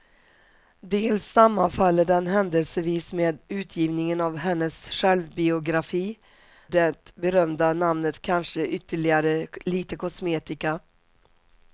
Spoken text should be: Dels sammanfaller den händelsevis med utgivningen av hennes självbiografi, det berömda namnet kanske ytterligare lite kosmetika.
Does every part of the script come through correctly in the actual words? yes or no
yes